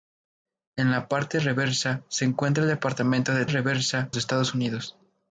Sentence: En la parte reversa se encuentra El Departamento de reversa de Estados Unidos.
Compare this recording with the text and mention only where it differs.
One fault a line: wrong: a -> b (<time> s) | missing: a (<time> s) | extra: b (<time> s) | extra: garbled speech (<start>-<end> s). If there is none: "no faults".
no faults